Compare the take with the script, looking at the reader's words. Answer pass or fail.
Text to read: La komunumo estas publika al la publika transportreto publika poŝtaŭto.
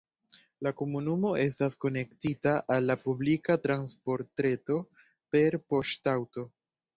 fail